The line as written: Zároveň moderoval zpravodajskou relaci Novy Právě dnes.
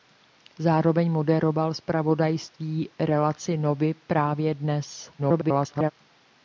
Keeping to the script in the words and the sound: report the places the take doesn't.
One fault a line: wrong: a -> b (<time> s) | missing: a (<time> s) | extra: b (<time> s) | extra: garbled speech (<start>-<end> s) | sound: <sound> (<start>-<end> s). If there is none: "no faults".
extra: garbled speech (5.2-5.9 s)